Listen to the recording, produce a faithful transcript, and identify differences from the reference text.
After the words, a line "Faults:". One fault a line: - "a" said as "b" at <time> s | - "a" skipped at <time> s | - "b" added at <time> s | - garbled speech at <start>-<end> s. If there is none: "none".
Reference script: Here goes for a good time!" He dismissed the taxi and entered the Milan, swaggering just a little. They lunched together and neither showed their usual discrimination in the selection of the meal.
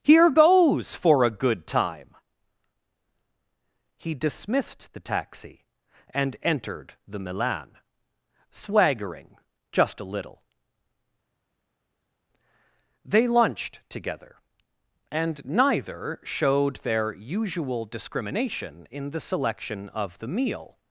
Here goes for a good time!" He dismissed the taxi and entered the Milan, swaggering just a little. They lunched together and neither showed their usual discrimination in the selection of the meal.
Faults:
none